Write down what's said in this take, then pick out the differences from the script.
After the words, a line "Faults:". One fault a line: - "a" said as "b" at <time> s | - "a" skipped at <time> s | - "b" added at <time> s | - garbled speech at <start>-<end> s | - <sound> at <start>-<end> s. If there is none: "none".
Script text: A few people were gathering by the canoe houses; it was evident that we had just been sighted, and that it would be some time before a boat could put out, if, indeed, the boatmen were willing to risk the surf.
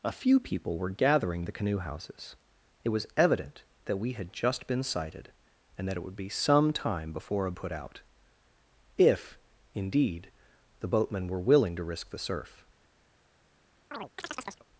A few people were gathering the canoe houses; it was evident that we had just been sighted, and that it would be some time before a put out, if, indeed, the boatmen were willing to risk the surf.
Faults:
- "by" skipped at 1.4 s
- "boat could" skipped at 7.5 s
- chirp at 13.9-14.7 s